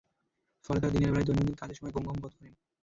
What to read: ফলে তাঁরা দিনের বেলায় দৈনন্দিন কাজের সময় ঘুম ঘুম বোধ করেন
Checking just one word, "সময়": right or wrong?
right